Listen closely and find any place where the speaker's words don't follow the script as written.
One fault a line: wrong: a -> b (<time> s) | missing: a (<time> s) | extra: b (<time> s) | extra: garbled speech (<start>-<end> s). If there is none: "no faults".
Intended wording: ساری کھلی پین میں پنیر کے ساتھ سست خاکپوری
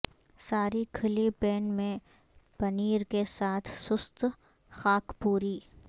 no faults